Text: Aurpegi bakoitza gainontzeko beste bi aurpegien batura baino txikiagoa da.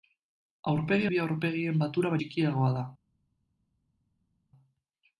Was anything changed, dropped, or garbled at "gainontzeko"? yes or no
yes